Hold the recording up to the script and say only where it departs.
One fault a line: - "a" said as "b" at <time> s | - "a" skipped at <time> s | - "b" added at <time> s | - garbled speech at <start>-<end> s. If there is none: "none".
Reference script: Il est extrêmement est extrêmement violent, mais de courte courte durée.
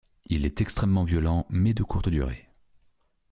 - "est extrêmement" skipped at 1.0 s
- "courte" skipped at 2.1 s